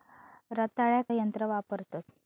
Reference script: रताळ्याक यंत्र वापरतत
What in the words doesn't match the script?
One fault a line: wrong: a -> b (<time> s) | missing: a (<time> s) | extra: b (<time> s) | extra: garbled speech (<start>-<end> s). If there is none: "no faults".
no faults